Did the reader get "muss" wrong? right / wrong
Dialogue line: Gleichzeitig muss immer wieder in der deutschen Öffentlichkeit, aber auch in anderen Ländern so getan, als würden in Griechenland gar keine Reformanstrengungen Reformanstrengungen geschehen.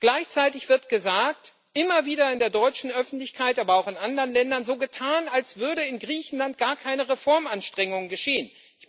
wrong